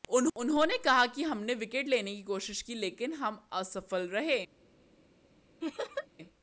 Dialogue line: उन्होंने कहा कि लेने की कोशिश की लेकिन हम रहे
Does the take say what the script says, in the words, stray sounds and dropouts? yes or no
no